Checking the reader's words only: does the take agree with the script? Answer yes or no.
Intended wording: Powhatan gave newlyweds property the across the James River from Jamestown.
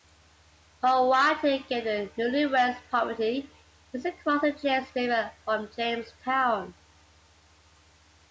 no